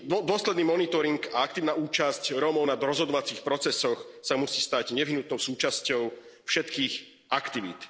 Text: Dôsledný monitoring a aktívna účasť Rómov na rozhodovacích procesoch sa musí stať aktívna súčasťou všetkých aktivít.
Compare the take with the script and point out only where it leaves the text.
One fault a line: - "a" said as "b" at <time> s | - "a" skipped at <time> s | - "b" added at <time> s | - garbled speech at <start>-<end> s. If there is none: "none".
- "aktívna" said as "nevyhnutnou" at 4.9 s